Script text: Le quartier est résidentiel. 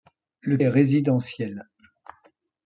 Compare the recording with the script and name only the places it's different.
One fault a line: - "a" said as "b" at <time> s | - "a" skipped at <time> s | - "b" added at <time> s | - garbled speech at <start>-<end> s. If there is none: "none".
- "quartier" skipped at 0.6 s